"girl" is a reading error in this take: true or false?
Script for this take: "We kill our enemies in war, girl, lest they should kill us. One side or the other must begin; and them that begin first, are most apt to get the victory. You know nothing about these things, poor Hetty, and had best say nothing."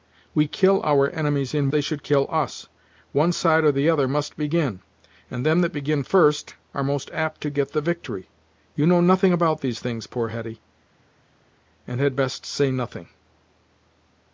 true